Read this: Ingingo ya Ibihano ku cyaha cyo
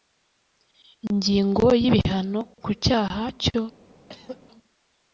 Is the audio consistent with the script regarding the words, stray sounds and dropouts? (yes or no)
no